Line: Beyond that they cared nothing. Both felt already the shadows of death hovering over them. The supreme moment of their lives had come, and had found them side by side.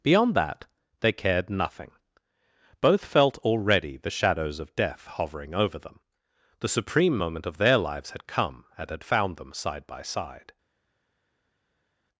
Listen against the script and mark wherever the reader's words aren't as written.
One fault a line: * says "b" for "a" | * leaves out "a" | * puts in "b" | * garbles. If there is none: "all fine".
all fine